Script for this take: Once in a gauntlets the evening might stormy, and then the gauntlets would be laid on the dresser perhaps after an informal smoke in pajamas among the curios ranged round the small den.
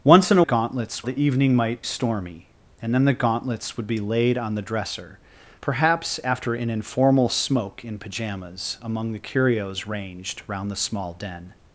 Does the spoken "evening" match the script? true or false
true